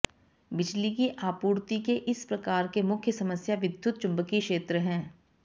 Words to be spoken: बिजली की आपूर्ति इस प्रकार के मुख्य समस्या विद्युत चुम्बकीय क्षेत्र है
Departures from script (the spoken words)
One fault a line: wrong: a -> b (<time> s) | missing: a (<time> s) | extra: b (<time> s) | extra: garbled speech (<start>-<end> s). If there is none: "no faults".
extra: के (1.8 s)